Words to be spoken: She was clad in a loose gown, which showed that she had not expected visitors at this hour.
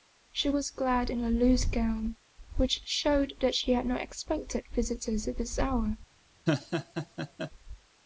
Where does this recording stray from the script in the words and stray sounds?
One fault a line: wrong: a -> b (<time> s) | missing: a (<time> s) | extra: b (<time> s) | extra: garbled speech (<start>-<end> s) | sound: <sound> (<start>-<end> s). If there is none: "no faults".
sound: laugh (6.5-7.5 s)